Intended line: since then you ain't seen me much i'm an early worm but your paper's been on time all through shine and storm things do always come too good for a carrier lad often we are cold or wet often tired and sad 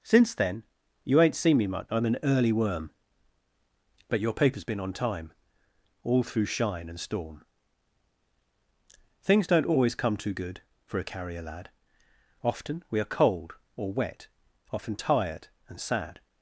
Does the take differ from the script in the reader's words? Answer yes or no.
yes